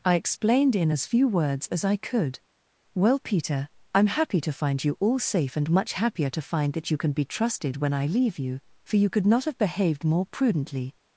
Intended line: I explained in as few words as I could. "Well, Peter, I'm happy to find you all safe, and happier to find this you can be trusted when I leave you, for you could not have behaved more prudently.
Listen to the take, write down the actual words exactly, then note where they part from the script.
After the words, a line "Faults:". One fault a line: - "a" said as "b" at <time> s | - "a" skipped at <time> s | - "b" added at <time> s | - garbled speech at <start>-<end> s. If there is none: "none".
I explained in as few words as I could. "Well, Peter, I'm happy to find you all safe, and much happier to find that you can be trusted when I leave you, for you could not have behaved more prudently.
Faults:
- "much" added at 5.7 s
- "this" said as "that" at 6.7 s